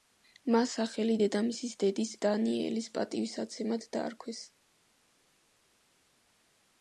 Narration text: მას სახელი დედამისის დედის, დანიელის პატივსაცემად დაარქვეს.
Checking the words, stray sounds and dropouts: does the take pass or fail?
pass